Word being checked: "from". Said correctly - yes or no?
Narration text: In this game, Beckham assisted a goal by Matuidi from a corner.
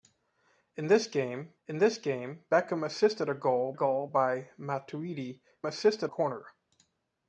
no